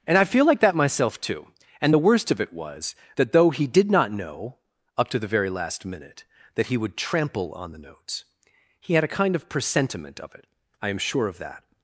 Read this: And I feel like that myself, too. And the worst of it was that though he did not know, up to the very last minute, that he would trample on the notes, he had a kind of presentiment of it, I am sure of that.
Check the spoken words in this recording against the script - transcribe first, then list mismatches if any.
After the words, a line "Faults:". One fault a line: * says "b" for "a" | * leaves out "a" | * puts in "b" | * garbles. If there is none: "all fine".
And I feel like that myself, too. And the worst of it was that though he did not know, up to the very last minute, that he would trample on the notes, he had a kind of presentiment of it, I am sure of that.
Faults:
all fine